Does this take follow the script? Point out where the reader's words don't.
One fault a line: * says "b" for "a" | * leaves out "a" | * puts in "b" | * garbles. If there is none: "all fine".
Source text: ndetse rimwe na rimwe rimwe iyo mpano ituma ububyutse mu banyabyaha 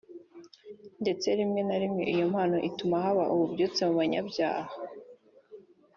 * leaves out "rimwe"
* puts in "haba"